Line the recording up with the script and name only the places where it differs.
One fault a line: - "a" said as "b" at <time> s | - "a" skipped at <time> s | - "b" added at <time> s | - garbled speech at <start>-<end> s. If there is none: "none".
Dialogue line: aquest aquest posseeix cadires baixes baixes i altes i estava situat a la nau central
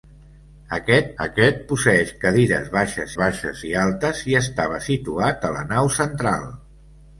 none